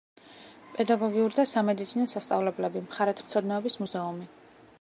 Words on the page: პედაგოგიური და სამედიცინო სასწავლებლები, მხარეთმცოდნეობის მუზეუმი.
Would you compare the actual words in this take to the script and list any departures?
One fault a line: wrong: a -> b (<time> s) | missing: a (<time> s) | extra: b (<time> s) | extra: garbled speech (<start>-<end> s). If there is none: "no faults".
no faults